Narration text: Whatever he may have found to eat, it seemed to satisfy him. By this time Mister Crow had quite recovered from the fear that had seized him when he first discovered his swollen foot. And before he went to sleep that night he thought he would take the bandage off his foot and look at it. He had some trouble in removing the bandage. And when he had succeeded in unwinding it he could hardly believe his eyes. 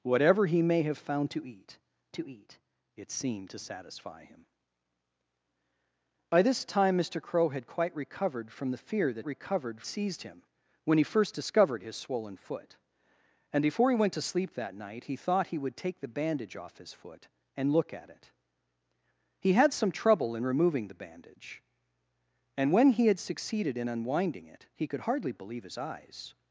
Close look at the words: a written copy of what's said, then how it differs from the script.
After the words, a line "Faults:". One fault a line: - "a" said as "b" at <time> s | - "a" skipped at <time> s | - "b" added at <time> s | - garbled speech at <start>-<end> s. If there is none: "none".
Whatever he may have found to eat to eat, it seemed to satisfy him. By this time Mister Crow had quite recovered from the fear that recovered seized him when he first discovered his swollen foot. And before he went to sleep that night he thought he would take the bandage off his foot and look at it. He had some trouble in removing the bandage. And when he had succeeded in unwinding it he could hardly believe his eyes.
Faults:
- "to eat" added at 2.1 s
- "had" said as "recovered" at 9.3 s